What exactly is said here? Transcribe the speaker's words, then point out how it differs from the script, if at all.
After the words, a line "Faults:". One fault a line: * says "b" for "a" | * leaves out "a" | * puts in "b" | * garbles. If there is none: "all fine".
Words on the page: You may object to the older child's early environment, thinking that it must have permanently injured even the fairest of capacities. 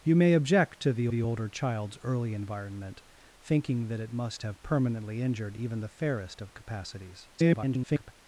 You may object to the the older child's early environment, thinking that it must have permanently injured even the fairest of capacities. [garbled]
Faults:
* puts in "the"
* garbles